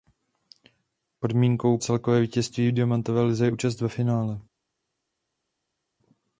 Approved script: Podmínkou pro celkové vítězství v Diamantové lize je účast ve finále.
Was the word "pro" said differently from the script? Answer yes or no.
yes